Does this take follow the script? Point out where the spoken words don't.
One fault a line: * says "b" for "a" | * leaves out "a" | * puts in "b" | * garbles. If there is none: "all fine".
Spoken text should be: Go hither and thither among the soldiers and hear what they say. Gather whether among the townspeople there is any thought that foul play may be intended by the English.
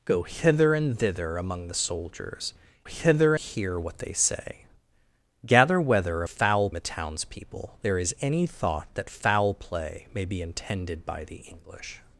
* says "hither" for "and"
* says "foul" for "among"